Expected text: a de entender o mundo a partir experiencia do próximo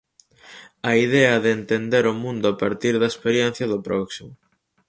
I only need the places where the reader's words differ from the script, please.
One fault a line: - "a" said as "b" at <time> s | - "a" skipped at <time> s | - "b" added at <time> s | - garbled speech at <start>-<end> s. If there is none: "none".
- "idea" added at 1.1 s
- "da" added at 3.0 s